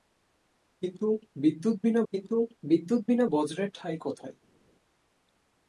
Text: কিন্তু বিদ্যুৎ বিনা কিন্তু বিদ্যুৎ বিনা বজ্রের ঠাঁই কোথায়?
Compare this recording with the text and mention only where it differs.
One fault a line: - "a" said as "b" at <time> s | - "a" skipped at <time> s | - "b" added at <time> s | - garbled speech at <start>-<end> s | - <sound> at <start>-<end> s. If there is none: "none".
none